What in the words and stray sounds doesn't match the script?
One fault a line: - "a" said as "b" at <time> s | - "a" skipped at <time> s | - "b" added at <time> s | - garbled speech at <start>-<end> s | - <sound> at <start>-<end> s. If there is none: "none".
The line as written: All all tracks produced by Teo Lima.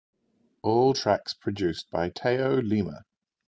- "all" skipped at 0.9 s